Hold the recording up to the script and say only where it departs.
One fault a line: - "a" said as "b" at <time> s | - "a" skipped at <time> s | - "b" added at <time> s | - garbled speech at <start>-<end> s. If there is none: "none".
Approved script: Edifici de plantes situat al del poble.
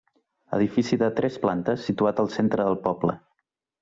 - "tres" added at 1.2 s
- "centre" added at 2.4 s